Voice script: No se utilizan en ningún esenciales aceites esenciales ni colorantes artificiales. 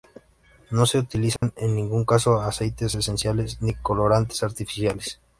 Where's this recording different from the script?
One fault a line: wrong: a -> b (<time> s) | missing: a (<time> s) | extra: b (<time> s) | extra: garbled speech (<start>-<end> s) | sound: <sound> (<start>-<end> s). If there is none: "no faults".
sound: dropout (1.4-1.4 s)
wrong: esenciales -> caso (2.0 s)